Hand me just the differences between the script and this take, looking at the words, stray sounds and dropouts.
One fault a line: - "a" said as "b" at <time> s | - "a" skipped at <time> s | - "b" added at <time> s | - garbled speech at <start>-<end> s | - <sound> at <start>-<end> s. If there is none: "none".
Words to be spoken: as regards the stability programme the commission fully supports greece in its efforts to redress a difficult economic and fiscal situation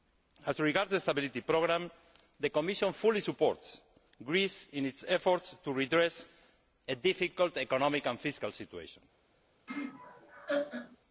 - laugh at 9.7-11.0 s